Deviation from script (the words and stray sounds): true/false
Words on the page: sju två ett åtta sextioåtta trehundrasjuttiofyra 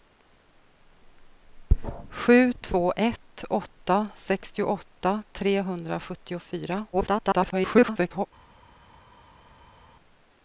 true